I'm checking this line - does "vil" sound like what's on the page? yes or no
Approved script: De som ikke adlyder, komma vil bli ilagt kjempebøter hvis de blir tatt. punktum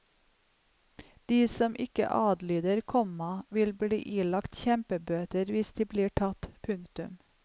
yes